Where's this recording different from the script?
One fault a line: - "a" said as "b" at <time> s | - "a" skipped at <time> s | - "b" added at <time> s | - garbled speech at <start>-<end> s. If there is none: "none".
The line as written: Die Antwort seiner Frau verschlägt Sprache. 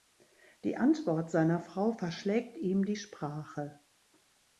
- "ihm die" added at 2.6 s